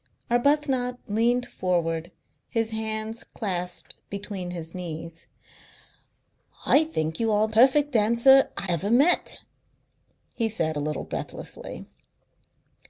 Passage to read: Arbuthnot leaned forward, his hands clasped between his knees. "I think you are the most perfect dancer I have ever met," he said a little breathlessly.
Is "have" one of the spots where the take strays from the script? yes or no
yes